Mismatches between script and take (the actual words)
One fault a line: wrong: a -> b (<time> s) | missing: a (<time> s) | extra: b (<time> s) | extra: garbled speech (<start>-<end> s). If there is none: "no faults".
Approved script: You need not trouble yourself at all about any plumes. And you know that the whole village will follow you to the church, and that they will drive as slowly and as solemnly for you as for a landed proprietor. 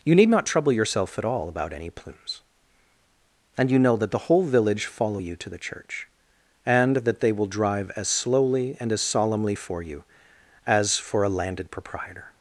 missing: will (4.8 s)